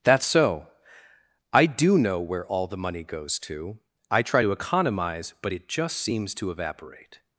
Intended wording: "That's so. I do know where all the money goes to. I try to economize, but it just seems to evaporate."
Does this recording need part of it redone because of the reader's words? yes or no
no